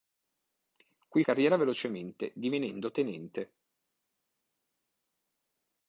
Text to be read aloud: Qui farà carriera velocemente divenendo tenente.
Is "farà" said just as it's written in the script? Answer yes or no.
no